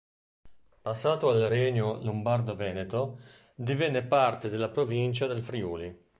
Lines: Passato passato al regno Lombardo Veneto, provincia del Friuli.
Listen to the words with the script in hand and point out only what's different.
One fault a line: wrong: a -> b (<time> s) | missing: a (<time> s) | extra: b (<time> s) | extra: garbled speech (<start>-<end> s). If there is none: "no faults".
missing: passato (1.3 s)
extra: divenne parte della (3.5 s)